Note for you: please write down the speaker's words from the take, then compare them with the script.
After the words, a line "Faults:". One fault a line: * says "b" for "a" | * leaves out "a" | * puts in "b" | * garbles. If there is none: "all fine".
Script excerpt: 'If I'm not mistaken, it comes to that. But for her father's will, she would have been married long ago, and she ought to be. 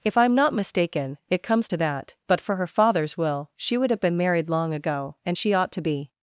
'If I'm not mistaken, it comes to that. But for her father's will, she would have been married long ago, and she ought to be.
Faults:
all fine